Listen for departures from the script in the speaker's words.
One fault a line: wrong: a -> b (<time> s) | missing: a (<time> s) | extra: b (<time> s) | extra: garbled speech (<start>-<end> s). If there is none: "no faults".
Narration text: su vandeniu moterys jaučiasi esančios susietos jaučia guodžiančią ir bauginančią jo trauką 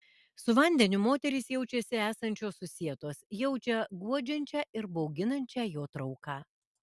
no faults